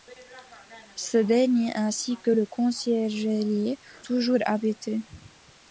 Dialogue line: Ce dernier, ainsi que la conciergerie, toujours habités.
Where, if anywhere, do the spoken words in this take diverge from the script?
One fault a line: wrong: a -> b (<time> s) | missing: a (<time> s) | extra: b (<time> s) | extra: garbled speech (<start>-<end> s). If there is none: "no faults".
no faults